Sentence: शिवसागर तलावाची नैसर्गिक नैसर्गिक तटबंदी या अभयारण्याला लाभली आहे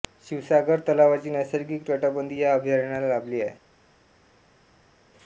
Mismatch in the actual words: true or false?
true